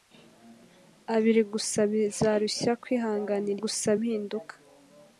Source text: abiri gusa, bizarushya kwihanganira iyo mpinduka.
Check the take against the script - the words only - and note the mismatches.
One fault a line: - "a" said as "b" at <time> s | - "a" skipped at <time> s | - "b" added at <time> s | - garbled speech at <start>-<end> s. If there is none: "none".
- "iyo" said as "gusa" at 3.6 s